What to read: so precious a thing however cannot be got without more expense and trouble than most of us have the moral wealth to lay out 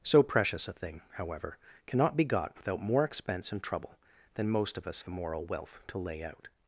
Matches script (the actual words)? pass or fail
fail